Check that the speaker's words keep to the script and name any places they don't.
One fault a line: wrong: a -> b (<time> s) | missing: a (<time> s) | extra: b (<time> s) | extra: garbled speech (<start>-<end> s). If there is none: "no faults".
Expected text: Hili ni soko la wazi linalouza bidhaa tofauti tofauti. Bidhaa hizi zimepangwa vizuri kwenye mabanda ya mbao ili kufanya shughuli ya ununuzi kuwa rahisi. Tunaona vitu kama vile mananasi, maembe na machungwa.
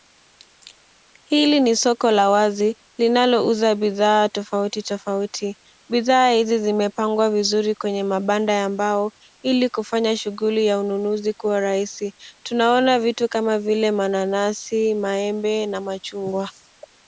no faults